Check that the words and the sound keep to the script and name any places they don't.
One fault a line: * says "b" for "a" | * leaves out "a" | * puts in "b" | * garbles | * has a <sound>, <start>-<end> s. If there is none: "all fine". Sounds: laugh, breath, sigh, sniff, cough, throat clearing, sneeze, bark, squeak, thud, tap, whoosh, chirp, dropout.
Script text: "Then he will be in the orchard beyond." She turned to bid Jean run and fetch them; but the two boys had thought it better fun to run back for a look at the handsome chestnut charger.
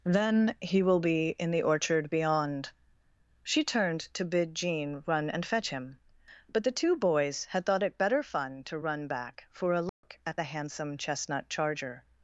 * says "him" for "them"
* has a dropout, 9.9-10.0 s